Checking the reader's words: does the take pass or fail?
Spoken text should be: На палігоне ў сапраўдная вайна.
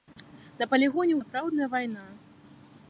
pass